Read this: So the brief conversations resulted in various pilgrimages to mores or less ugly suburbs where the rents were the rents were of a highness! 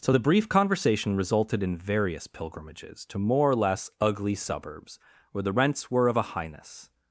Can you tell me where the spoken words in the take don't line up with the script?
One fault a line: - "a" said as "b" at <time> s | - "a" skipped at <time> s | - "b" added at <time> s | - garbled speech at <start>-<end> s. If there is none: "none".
- "conversations" said as "conversation" at 0.5 s
- "mores" said as "more" at 3.2 s
- "the rents were" skipped at 6.1 s